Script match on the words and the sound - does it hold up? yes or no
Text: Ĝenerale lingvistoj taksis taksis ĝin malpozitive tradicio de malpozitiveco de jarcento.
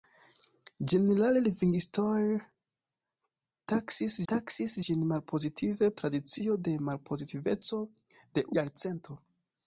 yes